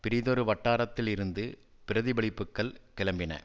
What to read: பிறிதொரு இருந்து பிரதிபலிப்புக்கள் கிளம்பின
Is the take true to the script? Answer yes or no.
no